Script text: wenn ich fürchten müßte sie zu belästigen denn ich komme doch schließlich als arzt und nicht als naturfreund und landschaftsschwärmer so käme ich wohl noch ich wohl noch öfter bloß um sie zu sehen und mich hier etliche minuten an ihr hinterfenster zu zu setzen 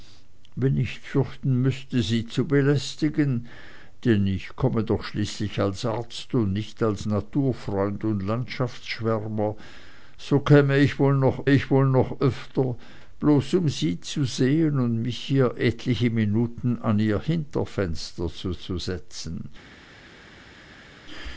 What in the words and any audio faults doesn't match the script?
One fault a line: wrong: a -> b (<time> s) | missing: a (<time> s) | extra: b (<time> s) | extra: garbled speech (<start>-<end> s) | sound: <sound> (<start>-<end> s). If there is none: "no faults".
no faults